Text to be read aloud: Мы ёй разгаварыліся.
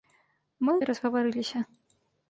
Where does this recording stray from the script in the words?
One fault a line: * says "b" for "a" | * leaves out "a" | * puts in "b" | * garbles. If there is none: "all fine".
all fine